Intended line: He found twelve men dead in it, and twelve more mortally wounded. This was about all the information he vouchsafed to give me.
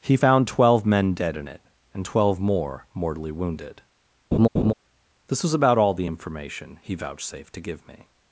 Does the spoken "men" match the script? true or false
true